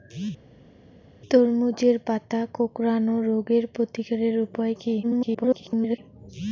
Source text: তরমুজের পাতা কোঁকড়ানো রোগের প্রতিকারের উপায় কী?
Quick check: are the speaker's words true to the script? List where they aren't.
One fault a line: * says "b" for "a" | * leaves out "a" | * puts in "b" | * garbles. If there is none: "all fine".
* garbles